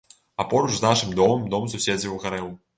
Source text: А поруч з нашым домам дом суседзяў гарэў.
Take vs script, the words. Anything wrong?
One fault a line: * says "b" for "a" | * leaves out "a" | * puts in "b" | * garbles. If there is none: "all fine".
all fine